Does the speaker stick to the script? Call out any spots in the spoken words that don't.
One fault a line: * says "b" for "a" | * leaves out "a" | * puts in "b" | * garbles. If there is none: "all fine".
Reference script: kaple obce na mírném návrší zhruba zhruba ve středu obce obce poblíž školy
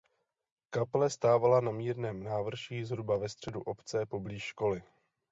* says "stávala" for "obce"
* leaves out "zhruba"
* leaves out "obce"